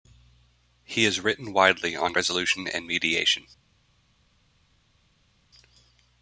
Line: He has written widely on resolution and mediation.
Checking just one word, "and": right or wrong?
right